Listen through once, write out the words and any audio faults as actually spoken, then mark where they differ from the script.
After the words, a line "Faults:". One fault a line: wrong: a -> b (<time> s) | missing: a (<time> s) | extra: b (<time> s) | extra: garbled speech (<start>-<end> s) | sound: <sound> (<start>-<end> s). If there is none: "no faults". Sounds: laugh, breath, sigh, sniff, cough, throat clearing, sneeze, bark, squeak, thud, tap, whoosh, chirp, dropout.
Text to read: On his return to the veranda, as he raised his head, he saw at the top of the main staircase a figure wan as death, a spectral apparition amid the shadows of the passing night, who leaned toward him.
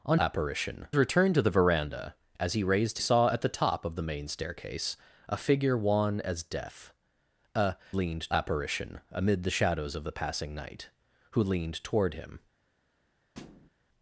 On apparition return to the veranda, as he raised saw at the top of the main staircase a figure wan as death, a leaned apparition amid the shadows of the passing night, who leaned toward him.
Faults:
wrong: his -> apparition (0.2 s)
missing: his head he (3.0 s)
wrong: spectral -> leaned (7.9 s)
sound: thud (13.3-13.7 s)